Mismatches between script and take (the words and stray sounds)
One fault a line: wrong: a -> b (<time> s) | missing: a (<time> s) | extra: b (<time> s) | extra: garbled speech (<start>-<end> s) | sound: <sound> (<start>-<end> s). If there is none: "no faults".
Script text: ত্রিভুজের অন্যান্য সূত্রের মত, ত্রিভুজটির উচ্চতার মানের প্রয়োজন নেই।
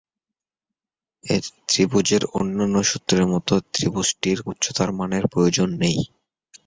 no faults